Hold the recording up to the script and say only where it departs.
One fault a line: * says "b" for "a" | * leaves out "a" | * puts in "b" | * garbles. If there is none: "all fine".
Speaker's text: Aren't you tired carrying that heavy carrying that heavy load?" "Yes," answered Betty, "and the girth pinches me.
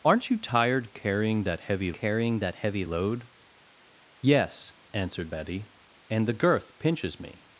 all fine